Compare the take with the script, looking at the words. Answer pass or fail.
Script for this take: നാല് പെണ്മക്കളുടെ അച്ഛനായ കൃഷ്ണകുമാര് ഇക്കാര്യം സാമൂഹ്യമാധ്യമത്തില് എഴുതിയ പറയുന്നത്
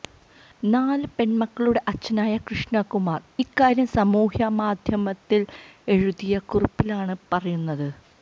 fail